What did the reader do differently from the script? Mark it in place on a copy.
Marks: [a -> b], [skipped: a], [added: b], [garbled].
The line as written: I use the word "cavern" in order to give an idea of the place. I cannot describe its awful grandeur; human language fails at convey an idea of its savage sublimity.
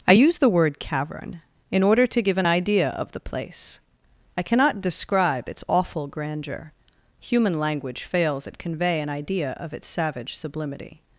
I use the word "cavern" in order to give an idea of the place. I cannot describe its awful grandeur; human language fails at convey an idea of its savage sublimity.